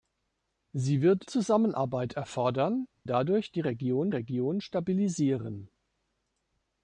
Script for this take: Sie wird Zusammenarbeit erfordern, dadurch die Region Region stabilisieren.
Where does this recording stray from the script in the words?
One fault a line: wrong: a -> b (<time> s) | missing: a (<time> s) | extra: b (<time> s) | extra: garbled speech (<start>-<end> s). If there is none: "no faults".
no faults